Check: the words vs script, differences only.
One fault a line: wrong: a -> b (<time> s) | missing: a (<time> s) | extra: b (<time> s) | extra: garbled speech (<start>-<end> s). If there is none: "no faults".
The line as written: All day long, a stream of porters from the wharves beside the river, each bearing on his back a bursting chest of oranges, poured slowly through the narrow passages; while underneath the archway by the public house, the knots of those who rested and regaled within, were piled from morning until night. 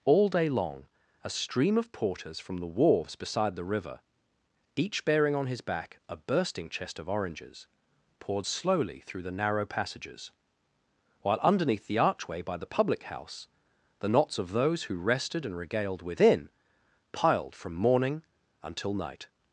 missing: were (16.5 s)